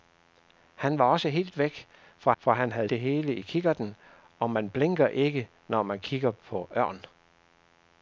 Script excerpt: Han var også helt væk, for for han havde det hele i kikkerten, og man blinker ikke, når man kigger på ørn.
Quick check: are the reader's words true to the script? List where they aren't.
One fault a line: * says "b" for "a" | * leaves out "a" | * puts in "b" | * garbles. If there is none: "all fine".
all fine